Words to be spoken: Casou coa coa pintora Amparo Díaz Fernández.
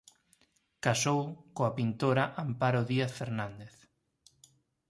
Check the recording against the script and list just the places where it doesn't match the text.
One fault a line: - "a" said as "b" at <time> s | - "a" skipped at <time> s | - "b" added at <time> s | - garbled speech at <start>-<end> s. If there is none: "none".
- "coa" skipped at 1.7 s